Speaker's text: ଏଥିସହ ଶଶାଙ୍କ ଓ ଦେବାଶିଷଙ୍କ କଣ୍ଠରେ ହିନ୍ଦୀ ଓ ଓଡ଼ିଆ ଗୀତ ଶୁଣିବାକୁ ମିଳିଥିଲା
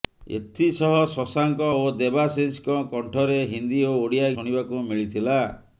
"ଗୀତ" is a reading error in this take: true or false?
true